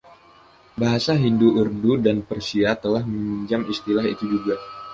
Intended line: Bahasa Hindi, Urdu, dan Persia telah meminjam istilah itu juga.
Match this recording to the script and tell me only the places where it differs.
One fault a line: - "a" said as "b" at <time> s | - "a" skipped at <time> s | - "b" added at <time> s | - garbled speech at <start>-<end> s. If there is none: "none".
none